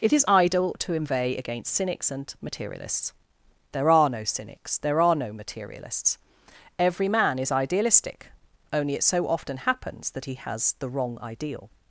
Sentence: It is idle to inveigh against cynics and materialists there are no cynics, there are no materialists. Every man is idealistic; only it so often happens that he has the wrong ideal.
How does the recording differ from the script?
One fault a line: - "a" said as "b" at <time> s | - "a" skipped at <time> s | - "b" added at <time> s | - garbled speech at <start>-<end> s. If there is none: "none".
none